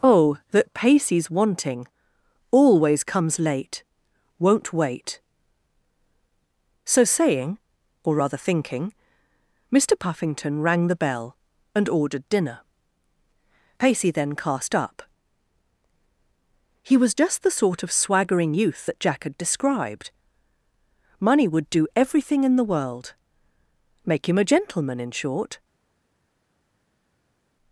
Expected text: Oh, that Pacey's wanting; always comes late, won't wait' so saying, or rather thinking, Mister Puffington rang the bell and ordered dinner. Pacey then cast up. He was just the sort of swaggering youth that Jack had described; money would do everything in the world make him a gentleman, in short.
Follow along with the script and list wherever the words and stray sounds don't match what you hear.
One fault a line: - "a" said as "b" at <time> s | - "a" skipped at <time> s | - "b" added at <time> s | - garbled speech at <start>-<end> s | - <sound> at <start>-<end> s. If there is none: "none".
none